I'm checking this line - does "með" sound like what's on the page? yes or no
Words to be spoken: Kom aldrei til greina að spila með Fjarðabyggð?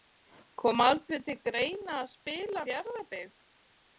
no